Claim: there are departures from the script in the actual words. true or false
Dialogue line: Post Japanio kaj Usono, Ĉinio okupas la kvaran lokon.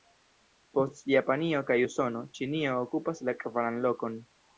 false